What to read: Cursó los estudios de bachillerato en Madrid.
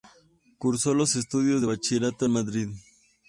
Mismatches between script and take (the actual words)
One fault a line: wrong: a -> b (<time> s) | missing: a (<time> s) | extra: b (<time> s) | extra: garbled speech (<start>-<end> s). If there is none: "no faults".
no faults